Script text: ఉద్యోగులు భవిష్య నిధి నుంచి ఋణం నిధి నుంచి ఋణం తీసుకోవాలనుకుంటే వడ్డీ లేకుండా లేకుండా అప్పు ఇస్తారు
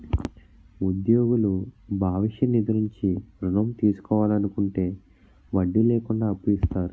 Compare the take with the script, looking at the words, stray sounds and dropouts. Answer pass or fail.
fail